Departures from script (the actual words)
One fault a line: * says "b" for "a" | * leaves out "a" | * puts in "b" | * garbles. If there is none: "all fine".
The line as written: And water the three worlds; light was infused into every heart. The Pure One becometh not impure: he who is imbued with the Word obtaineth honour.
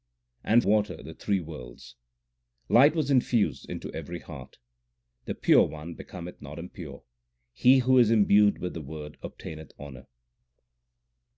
all fine